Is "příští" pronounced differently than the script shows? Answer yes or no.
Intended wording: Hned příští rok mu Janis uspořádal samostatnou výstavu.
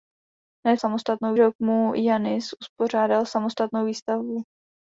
yes